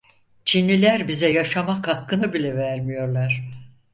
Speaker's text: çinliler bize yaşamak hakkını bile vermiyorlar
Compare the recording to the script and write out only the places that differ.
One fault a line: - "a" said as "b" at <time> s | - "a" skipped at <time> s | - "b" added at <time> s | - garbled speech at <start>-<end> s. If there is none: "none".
none